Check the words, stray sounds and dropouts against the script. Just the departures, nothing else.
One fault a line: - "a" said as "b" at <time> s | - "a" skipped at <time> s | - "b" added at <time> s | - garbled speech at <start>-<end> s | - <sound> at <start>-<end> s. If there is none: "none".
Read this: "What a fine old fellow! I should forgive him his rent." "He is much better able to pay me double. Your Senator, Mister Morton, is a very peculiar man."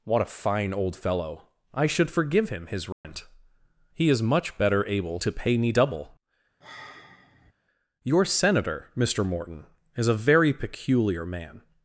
- dropout at 2.9-3.0 s
- sigh at 6.6-7.5 s